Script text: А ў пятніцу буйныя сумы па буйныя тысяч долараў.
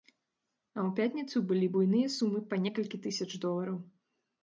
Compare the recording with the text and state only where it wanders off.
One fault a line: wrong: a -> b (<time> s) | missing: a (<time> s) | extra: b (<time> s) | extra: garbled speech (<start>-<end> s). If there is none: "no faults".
extra: былі (1.5 s)
wrong: буйныя -> некалькі (2.7 s)